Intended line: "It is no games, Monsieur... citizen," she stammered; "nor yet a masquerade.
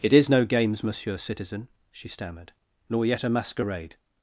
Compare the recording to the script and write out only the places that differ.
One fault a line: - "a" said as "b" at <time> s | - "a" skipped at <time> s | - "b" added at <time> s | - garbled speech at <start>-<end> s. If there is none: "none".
none